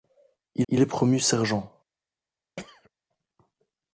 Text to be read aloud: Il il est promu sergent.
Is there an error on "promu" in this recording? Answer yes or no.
no